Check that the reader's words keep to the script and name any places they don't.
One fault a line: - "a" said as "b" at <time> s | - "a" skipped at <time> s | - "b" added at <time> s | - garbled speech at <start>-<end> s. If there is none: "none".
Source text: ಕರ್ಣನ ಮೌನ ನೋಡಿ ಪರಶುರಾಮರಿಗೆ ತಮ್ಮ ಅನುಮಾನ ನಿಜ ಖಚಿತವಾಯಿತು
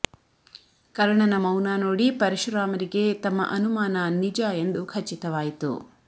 - "ಎಂದು" added at 4.6 s